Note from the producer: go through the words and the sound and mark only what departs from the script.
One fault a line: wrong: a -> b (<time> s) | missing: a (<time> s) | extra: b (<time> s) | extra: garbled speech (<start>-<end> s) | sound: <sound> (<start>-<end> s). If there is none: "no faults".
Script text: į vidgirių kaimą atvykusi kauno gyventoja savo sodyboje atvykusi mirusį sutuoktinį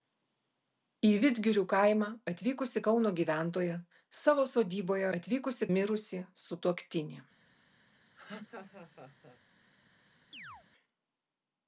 sound: laugh (8.2-9.4 s)
sound: chirp (10.3-10.7 s)